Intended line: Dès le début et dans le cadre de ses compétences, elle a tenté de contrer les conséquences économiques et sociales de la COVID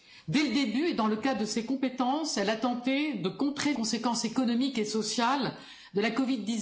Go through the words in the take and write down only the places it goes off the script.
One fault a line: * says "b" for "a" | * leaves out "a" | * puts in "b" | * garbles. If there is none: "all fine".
* leaves out "les"